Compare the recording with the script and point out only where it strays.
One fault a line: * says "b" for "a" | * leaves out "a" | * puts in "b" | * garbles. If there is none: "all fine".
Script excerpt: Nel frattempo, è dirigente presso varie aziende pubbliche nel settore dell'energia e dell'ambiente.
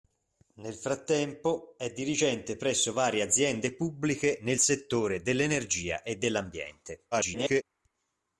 * garbles